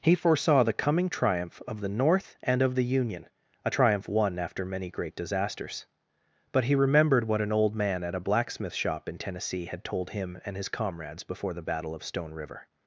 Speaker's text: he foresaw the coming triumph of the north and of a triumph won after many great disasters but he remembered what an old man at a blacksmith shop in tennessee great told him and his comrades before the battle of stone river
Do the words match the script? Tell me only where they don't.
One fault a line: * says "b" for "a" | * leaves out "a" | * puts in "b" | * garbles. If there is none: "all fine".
* puts in "the union"
* says "had" for "great"